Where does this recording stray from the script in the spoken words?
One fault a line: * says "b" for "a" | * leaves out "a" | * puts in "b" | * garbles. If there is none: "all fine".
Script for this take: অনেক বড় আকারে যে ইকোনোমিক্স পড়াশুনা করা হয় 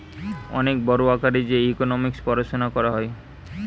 all fine